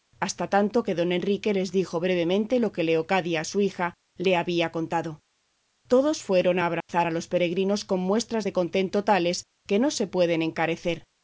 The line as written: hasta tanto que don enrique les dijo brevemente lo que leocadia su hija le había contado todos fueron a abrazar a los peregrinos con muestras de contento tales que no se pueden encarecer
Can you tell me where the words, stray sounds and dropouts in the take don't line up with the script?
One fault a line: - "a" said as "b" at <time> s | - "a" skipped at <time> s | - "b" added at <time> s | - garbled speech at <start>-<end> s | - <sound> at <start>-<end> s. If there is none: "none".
- dropout at 6.8-6.9 s